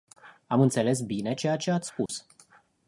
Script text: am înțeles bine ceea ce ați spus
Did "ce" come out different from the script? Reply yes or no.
no